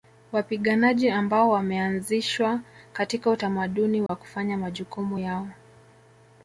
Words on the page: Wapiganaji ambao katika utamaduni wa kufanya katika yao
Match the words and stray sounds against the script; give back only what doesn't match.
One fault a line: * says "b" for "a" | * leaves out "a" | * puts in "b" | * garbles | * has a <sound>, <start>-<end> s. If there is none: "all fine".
* puts in "wameanzishwa"
* has a dropout, 4.1-4.1 s
* says "majukumu" for "katika"